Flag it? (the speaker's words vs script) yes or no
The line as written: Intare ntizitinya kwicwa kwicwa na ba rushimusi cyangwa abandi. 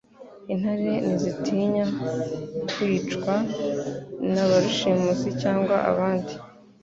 yes